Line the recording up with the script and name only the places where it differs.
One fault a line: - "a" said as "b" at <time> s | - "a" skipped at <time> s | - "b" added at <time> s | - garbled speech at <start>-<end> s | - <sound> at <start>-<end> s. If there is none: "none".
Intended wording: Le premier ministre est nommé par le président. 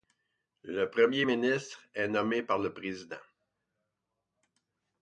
none